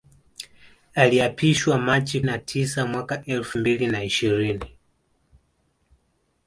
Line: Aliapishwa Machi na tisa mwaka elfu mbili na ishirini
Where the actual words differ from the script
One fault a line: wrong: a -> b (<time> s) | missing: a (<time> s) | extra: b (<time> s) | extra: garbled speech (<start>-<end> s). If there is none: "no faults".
no faults